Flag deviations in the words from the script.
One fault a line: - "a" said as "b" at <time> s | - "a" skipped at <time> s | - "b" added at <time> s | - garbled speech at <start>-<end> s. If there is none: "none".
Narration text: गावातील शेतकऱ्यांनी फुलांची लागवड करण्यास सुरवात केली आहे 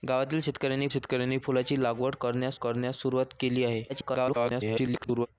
- "शेतकऱ्यांनी" added at 0.9 s
- "करण्यास" added at 2.5 s
- garbled speech at 3.9-5.3 s